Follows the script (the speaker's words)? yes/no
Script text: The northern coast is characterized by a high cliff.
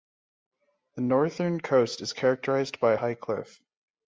yes